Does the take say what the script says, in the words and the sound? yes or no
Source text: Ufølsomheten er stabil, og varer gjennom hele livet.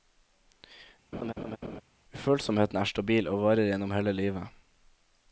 no